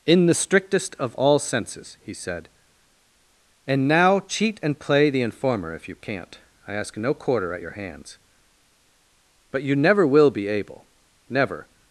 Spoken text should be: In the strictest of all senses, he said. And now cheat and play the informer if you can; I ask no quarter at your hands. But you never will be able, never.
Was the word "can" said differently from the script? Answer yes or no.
yes